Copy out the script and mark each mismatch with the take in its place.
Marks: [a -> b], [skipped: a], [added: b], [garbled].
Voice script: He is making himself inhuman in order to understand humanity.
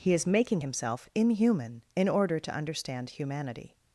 He is making himself inhuman in order to understand humanity.